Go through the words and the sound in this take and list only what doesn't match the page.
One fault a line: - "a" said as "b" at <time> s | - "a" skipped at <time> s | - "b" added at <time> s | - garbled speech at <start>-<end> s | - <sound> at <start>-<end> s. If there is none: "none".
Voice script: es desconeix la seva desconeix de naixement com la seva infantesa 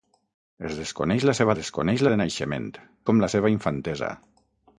none